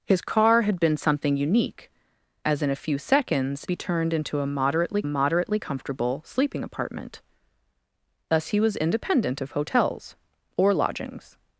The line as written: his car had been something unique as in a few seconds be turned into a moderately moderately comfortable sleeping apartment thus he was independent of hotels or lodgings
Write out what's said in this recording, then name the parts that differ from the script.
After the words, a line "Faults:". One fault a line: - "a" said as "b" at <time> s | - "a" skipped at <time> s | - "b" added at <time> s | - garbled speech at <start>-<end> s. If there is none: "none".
his car had been something unique as in a few seconds be turned into a moderately moderately comfortable sleeping apartment thus he was independent of hotels or lodgings
Faults:
none